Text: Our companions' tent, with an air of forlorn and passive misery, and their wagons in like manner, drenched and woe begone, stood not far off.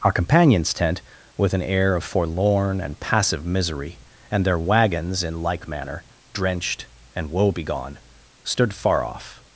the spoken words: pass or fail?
fail